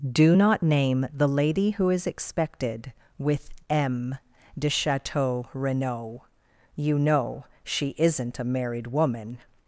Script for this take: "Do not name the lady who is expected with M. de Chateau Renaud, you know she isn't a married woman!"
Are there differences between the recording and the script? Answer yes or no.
no